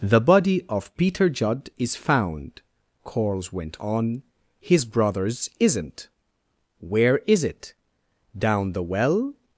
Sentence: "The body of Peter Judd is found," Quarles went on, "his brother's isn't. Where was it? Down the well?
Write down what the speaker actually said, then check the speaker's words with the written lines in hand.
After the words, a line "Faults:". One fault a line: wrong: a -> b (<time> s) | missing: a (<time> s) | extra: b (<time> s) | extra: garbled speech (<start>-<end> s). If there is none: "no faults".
"The body of Peter Judd is found," Quarles went on, "his brother's isn't. Where is it? Down the well?
Faults:
wrong: was -> is (7.3 s)